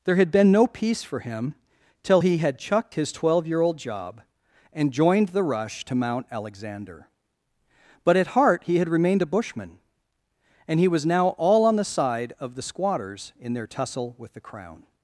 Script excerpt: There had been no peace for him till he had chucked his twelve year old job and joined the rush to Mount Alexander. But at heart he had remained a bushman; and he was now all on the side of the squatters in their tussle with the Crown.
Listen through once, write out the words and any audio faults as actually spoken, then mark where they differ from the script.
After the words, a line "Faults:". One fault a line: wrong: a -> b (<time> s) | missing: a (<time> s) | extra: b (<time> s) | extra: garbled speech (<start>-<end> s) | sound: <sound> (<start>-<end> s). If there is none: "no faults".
There had been no peace for him till he had chucked his twelve year old job and joined the rush to Mount Alexander. But at heart he had remained a bushman; and he was now all on the side of the squatters in their tussle with the Crown.
Faults:
no faults